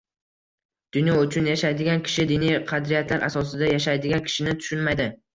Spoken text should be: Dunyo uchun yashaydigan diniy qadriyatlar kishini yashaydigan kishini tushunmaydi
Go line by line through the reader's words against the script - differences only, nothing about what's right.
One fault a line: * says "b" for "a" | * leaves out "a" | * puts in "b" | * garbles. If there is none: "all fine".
* puts in "kishi"
* says "asosida" for "kishini"